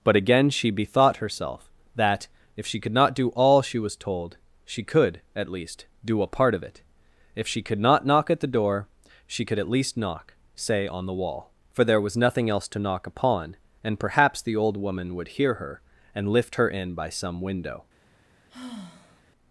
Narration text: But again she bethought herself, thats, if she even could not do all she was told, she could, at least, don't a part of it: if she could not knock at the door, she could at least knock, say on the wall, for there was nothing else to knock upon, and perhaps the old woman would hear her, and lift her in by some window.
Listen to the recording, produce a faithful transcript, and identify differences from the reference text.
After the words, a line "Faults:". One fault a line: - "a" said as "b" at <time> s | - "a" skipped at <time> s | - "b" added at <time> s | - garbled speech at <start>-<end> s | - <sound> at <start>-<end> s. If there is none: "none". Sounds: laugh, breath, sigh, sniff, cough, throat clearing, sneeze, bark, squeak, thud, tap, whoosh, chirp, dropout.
But again she bethought herself, that, if she could not do all she was told, she could, at least, do a part of it: if she could not knock at the door, she could at least knock, say on the wall, for there was nothing else to knock upon, and perhaps the old woman would hear her, and lift her in by some window.
Faults:
- "thats" said as "that" at 1.9 s
- "even" skipped at 2.8 s
- "don't" said as "do" at 6.0 s
- sigh at 18.5-19.2 s